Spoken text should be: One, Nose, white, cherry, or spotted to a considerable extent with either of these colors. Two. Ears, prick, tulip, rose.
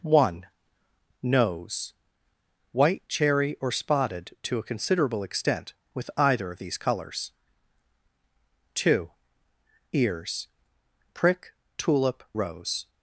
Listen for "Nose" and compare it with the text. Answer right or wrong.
right